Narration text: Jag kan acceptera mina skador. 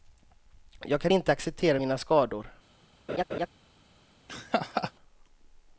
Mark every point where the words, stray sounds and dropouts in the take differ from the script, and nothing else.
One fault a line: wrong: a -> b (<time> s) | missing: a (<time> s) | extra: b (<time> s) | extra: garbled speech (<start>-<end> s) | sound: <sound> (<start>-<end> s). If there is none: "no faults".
extra: inte (1.1 s)
sound: laugh (3.1-3.5 s)
sound: laugh (4.3-4.9 s)